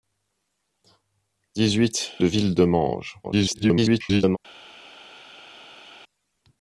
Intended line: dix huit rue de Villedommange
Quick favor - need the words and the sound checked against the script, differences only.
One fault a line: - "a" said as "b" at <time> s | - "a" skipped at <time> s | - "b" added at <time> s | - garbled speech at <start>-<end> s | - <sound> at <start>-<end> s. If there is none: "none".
- "rue" skipped at 2.1 s
- garbled speech at 3.2-4.4 s